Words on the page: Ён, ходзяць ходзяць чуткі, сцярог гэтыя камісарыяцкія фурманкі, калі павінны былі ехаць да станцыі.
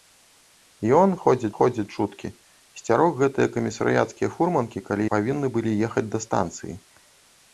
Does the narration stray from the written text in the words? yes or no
no